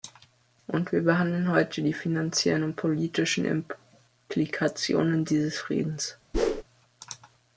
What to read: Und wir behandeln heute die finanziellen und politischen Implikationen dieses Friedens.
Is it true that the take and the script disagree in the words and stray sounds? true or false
true